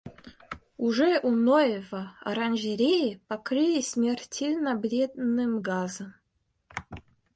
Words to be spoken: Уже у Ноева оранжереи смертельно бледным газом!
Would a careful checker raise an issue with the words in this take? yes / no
yes